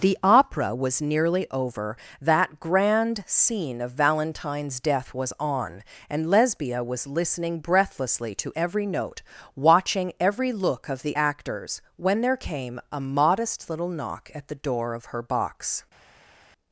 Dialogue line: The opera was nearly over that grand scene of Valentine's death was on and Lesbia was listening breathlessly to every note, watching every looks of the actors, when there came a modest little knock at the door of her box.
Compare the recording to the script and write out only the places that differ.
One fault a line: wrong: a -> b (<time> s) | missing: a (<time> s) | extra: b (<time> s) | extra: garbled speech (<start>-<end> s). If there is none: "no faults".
wrong: looks -> look (10.5 s)